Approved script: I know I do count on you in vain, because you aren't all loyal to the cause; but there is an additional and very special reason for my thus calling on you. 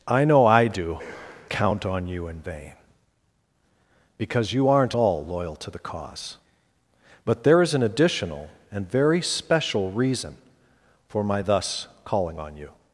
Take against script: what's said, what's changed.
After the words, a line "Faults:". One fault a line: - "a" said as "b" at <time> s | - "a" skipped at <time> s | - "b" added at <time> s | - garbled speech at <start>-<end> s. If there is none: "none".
I know I do count on you in vain, because you aren't all loyal to the cause; but there is an additional and very special reason for my thus calling on you.
Faults:
none